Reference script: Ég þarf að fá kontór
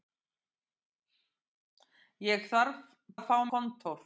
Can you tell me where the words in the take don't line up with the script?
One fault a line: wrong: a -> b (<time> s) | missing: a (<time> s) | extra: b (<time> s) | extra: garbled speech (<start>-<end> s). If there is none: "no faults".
no faults